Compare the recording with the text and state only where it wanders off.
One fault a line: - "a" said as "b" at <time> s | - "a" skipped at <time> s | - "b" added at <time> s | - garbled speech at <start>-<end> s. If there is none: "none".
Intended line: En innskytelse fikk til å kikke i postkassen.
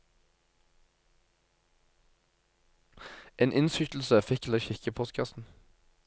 none